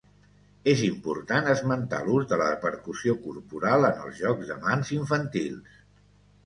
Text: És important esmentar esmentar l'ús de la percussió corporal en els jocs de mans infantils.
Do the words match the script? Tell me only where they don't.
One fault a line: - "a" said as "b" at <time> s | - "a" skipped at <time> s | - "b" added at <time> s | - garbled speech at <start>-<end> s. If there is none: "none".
- "esmentar" skipped at 2.0 s